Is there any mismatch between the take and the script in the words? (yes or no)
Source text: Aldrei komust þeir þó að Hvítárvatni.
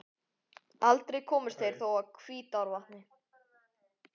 no